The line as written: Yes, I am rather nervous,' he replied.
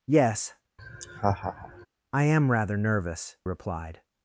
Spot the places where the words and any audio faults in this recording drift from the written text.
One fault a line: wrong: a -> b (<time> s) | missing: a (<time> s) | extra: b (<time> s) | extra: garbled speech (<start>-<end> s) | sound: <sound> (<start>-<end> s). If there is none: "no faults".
sound: laugh (0.8-1.9 s)
missing: he (3.4 s)